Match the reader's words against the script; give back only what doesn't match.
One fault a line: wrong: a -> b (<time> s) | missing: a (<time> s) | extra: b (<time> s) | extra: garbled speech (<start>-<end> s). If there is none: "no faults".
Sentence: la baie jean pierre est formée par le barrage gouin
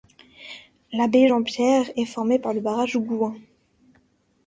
no faults